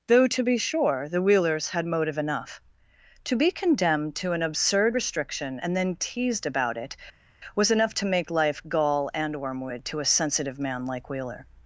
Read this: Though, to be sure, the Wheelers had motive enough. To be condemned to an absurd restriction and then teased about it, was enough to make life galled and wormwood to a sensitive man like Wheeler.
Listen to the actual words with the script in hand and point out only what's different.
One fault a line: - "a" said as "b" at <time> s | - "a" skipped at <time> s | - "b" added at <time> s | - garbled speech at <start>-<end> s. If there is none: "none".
- "galled" said as "gall" at 8.7 s